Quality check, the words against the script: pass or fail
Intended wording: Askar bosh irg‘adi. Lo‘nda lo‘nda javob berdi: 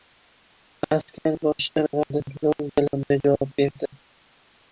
pass